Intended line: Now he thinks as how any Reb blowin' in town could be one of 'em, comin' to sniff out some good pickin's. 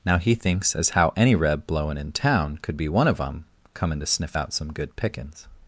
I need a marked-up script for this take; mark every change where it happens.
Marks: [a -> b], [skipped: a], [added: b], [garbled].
Now he thinks as how any Reb blowin' in town could be one of 'em, comin' to sniff out some good pickin's.